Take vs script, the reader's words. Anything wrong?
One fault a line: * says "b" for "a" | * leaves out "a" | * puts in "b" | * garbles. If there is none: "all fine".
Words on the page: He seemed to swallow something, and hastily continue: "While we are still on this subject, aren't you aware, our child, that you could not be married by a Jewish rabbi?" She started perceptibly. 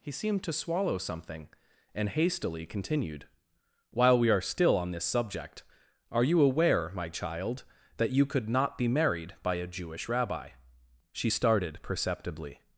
* says "continued" for "continue"
* says "are" for "aren't"
* says "my" for "our"